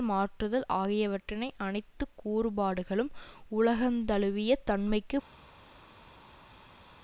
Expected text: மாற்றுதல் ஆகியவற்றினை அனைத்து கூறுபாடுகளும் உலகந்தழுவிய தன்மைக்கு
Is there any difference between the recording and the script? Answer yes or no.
no